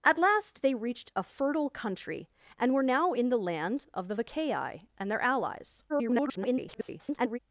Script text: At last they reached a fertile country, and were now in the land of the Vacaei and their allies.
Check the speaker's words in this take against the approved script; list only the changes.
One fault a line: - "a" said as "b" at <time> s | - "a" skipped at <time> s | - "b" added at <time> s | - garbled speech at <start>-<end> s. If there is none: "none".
- garbled speech at 5.9-7.4 s